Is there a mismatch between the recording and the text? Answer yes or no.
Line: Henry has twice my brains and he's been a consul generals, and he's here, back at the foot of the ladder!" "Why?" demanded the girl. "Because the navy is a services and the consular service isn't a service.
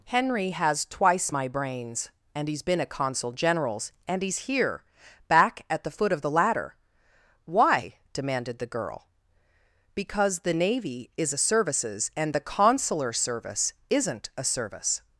no